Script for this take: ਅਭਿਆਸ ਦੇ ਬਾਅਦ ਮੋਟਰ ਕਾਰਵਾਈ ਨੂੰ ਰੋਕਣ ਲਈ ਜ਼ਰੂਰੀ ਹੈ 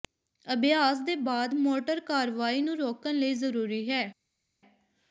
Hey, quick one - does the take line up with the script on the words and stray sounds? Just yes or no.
yes